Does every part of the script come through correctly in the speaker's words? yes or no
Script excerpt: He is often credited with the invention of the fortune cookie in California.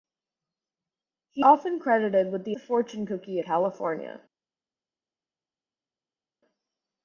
no